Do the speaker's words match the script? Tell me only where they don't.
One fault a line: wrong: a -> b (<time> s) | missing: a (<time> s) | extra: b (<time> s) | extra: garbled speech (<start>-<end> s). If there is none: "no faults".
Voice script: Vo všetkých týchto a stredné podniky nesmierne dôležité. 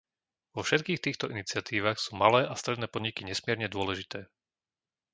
extra: iniciatívach sú malé (1.3 s)